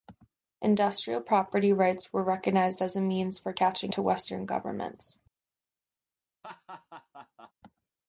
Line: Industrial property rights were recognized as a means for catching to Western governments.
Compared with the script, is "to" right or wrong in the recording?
right